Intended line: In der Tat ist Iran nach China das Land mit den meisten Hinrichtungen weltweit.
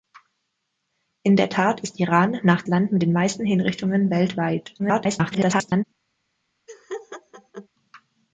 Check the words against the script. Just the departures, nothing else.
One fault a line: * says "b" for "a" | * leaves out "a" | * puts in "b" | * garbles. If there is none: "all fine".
* leaves out "China das"
* garbles